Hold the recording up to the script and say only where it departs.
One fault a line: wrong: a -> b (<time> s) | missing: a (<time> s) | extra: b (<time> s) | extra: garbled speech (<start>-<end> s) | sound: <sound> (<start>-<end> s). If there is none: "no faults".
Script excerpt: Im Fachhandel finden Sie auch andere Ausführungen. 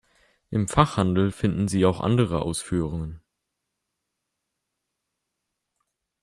no faults